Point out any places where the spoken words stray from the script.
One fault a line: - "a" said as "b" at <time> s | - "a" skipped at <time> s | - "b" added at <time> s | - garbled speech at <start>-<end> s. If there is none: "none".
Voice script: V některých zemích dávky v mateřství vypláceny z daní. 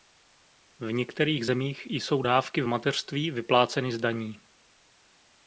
- "jsou" added at 1.9 s